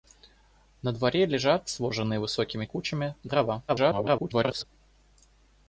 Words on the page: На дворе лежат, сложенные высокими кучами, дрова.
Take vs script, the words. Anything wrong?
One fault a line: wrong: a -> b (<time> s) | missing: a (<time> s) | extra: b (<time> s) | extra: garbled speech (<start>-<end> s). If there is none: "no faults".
extra: garbled speech (3.7-4.6 s)